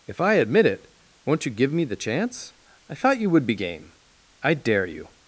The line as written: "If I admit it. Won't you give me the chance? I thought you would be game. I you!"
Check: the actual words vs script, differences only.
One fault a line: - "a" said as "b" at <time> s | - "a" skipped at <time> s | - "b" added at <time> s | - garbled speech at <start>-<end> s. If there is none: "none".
- "dare" added at 4.5 s